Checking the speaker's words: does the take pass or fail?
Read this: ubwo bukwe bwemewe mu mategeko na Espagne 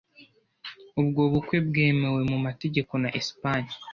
pass